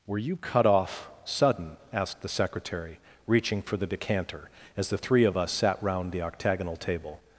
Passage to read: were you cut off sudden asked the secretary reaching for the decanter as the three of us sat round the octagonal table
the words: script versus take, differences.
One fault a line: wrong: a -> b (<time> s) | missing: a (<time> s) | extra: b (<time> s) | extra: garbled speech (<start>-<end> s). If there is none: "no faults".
no faults